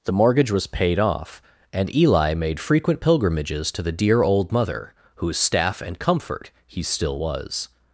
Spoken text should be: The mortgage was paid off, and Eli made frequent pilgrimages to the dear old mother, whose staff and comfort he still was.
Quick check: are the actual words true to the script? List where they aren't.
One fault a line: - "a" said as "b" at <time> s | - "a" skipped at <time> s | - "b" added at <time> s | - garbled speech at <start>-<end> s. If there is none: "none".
none